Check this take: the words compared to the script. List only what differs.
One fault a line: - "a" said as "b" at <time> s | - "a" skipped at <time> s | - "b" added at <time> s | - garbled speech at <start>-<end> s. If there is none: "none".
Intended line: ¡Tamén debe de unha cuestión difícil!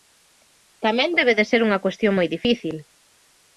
- "ser" added at 1.5 s
- "moi" added at 2.1 s